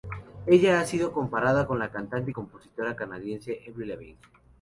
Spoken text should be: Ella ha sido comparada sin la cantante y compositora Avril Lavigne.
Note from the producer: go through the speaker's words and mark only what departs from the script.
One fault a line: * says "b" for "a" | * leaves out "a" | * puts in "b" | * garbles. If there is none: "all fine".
* says "con" for "sin"
* puts in "canadiense"